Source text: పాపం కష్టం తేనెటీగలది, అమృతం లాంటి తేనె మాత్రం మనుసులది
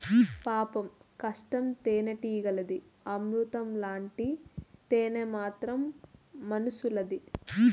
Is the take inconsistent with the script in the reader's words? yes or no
no